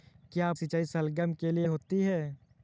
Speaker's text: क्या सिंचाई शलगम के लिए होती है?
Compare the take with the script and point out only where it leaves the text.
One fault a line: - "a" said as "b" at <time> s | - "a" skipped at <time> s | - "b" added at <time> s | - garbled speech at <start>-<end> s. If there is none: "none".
none